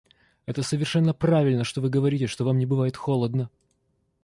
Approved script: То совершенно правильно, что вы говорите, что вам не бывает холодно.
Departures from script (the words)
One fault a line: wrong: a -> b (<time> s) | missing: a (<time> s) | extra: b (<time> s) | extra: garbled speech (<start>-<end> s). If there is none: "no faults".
wrong: То -> Это (0.5 s)